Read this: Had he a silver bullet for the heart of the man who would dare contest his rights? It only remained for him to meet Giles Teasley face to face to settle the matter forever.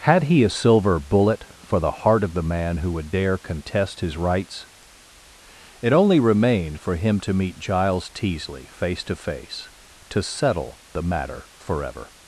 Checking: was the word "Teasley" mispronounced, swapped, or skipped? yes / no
no